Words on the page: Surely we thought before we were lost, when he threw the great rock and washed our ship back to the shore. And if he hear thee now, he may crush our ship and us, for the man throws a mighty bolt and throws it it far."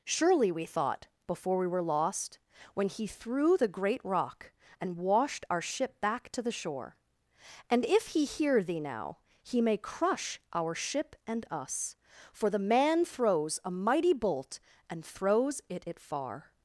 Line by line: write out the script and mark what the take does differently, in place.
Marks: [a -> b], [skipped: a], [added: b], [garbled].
Surely we thought before we were lost, when he threw the great rock and washed our ship back to the shore. And if he hear thee now, he may crush our ship and us, for the man throws a mighty bolt and throws it it far."